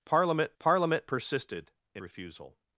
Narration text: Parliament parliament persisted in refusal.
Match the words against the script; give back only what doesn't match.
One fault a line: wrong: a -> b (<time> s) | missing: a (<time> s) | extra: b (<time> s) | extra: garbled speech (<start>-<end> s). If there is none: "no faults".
no faults